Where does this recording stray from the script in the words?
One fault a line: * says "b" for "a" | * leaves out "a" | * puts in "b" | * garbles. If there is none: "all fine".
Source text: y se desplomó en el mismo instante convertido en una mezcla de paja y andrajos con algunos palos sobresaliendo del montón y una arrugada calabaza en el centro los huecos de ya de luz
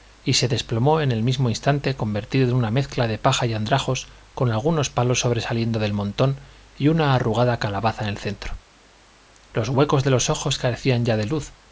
* puts in "los ojos carecían"